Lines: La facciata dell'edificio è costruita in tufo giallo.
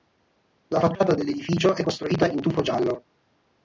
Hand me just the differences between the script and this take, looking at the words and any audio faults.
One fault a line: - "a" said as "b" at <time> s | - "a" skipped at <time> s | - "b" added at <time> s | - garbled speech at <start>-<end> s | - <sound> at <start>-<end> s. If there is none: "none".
none